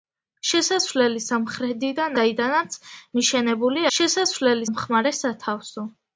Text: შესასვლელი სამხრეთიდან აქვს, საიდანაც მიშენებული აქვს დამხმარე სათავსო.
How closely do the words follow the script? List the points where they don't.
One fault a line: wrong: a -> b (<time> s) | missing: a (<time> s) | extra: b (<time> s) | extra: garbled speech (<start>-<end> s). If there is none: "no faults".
missing: აქვს (2.2 s)
wrong: აქვს -> შესასვლელი (4.0 s)